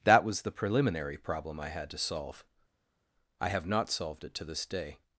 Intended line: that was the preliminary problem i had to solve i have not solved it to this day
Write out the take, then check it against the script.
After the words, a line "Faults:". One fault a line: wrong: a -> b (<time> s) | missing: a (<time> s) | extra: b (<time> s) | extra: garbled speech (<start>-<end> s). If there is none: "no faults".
that was the preliminary problem i had to solve i have not solved it to this day
Faults:
no faults